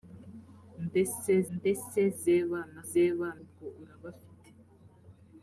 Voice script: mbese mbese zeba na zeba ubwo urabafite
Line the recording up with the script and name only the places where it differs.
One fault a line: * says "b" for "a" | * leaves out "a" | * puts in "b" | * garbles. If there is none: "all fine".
all fine